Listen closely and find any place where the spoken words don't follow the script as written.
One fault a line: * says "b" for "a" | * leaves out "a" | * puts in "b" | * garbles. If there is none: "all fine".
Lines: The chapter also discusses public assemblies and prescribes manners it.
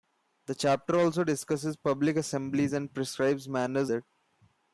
all fine